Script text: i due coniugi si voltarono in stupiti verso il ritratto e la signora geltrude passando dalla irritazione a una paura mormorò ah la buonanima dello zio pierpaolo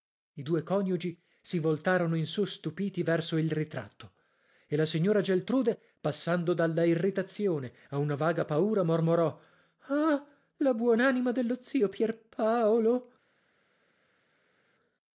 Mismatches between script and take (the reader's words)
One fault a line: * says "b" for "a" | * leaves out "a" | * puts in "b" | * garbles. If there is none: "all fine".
* puts in "su"
* puts in "vaga"